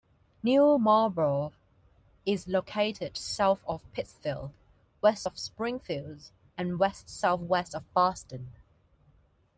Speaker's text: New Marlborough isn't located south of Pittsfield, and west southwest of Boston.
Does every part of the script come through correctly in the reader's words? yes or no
no